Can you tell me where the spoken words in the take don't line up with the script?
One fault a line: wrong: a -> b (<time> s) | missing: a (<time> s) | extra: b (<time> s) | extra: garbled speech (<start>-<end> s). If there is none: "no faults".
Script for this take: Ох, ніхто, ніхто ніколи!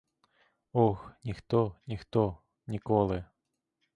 no faults